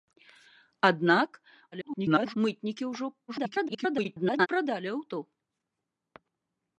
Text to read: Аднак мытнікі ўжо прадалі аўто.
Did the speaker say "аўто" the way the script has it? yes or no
yes